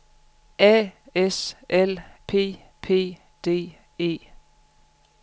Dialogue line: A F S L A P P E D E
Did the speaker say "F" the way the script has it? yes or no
no